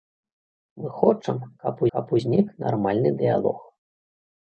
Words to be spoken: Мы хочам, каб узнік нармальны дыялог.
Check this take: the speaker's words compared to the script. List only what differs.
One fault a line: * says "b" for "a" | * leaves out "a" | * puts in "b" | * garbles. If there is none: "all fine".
* puts in "каб"